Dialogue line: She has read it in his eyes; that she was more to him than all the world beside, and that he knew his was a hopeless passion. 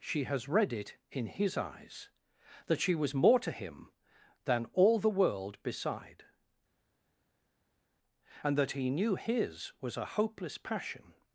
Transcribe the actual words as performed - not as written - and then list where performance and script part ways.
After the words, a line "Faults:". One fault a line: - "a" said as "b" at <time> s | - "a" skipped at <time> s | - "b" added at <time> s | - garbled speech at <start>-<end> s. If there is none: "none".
She has read it in his eyes; that she was more to him than all the world beside, and that he knew his was a hopeless passion.
Faults:
none